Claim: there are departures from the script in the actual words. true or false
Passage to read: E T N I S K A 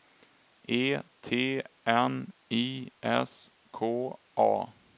false